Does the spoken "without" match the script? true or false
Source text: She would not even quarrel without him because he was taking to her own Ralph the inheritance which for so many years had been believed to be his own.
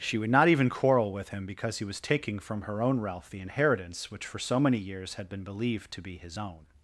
false